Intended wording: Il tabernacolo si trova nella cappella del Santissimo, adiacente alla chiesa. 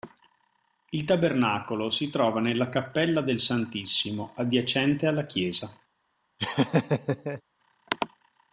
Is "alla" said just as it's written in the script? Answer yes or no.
yes